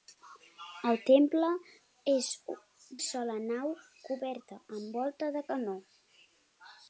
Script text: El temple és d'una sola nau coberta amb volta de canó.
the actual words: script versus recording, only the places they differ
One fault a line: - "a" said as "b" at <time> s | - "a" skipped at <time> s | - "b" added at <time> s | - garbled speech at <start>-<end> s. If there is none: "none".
- "d'una" skipped at 2.3 s